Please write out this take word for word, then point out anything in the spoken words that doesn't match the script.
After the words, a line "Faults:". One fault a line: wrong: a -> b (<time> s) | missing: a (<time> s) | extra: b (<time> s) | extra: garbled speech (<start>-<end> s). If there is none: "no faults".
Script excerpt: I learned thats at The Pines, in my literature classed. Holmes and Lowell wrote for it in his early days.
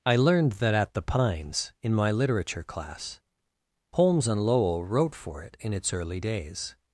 I learned that at The Pines, in my literature class. Holmes and Lowell wrote for it in its early days.
Faults:
wrong: thats -> that (0.5 s)
wrong: classed -> class (2.6 s)
wrong: his -> its (5.7 s)